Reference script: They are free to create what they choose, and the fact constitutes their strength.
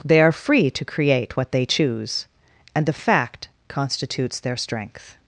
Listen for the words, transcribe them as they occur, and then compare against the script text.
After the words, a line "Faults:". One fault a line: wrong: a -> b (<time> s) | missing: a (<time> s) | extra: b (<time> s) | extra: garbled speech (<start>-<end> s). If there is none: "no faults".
They are free to create what they choose, and the fact constitutes their strength.
Faults:
no faults